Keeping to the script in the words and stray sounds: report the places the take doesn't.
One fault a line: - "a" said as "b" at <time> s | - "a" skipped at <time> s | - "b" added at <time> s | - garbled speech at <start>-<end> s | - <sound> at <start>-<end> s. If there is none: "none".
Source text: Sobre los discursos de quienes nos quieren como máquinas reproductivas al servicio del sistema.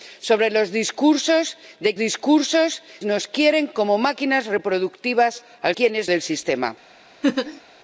- "quienes" said as "discursos" at 2.0 s
- "servicio" said as "quienes" at 5.8 s
- laugh at 7.2-7.6 s